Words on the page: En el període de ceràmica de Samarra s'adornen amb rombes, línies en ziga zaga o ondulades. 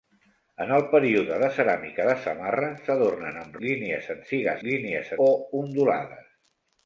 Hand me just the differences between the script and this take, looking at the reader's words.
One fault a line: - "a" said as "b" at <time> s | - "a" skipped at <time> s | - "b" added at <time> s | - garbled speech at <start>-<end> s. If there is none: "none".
- "rombes" skipped at 3.6 s
- "zaga" said as "línies" at 4.7 s